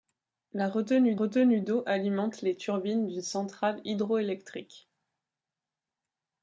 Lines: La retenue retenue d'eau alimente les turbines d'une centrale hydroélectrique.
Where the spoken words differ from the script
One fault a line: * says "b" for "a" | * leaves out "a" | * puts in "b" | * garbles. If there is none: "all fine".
all fine